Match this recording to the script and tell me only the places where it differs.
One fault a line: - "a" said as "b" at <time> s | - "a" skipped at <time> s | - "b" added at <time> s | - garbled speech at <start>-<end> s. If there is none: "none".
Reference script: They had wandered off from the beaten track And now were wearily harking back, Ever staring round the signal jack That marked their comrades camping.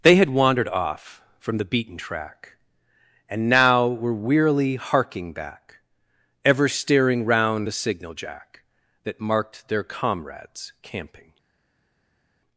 none